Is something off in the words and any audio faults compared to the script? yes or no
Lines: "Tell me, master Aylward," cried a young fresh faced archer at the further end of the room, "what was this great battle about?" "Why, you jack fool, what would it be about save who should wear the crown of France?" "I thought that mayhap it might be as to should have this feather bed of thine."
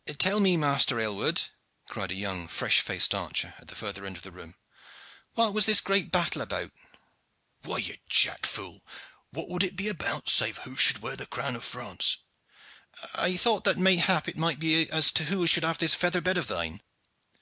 yes